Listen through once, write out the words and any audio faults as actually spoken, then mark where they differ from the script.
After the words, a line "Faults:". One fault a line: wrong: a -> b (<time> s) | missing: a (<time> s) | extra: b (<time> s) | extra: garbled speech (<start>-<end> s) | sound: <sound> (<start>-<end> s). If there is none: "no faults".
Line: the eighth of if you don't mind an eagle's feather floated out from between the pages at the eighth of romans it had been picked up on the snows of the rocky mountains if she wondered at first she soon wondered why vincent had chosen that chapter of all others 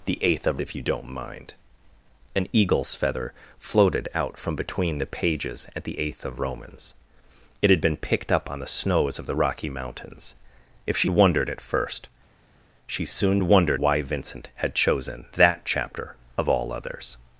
the eighth of if you don't mind an eagle's feather floated out from between the pages at the eighth of romans it had been picked up on the snows of the rocky mountains if she wondered at first she soon wondered why vincent had chosen that chapter of all others
Faults:
no faults